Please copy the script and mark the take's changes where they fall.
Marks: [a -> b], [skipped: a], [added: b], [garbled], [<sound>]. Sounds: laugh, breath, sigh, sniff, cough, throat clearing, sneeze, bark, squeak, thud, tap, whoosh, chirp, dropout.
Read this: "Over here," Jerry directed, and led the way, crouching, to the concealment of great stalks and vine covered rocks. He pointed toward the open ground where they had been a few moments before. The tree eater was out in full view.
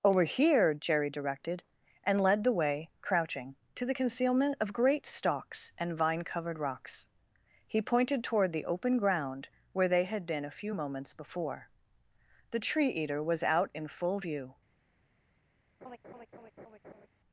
"Over here," Jerry directed, and led the way, crouching, to the concealment of great stalks and vine covered rocks. He pointed toward the open ground where they had been a few moments before. The tree eater was out in full view. [laugh]